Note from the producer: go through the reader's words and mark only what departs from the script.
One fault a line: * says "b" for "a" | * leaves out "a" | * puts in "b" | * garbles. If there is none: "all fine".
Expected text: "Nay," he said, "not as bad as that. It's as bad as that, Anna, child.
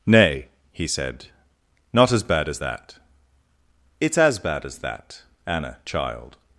all fine